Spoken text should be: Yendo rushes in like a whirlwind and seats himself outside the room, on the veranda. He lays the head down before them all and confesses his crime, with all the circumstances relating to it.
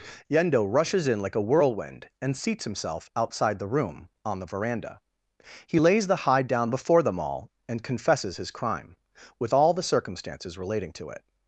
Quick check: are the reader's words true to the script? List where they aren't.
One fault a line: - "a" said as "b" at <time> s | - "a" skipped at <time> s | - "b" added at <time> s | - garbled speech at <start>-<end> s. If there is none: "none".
- "head" said as "hide" at 6.1 s